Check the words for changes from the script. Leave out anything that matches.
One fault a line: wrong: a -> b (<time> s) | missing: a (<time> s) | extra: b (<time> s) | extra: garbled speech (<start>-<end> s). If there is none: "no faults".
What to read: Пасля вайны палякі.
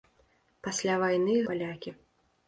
no faults